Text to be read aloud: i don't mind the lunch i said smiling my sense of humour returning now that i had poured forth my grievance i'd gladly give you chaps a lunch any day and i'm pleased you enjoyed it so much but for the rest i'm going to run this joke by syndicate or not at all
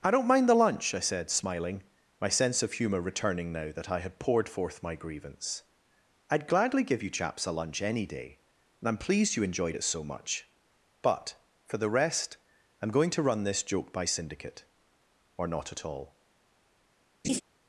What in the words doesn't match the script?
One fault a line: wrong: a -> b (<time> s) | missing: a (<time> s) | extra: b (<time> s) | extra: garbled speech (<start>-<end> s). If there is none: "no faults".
no faults